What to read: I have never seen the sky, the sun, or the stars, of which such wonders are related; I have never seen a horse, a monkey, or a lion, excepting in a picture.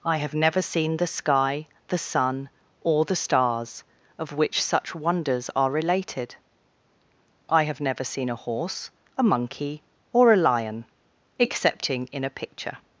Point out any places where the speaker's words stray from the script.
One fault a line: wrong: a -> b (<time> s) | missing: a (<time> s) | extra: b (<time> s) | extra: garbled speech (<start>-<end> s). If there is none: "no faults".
no faults